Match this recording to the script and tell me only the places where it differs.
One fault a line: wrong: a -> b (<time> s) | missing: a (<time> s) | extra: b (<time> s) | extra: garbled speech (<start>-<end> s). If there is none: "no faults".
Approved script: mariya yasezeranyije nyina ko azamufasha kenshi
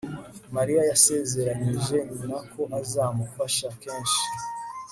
no faults